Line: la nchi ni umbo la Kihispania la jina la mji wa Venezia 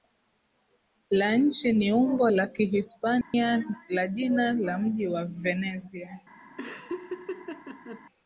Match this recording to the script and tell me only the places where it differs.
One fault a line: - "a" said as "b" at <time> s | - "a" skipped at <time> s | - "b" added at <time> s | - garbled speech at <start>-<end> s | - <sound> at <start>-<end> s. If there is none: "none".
- dropout at 3.2-3.3 s
- laugh at 6.6-8.0 s